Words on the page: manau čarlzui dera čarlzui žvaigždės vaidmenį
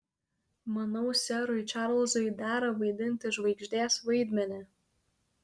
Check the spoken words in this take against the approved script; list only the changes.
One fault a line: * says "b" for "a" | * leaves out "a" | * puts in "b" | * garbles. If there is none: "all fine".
* puts in "serui"
* says "vaidinti" for "čarlzui"